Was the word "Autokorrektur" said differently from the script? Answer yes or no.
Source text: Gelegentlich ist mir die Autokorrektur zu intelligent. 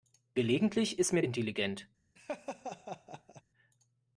yes